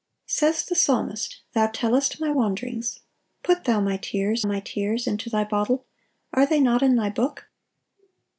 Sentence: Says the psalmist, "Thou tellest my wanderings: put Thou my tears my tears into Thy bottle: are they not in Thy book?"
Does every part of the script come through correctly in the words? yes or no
yes